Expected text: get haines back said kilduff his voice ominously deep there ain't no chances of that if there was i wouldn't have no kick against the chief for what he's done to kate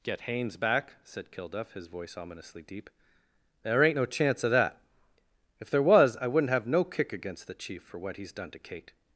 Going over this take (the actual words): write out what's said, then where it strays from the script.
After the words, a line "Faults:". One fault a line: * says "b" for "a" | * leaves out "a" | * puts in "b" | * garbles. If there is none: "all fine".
get haines back said kilduff his voice ominously deep there ain't no chance of that if there was i wouldn't have no kick against the chief for what he's done to kate
Faults:
* says "chance" for "chances"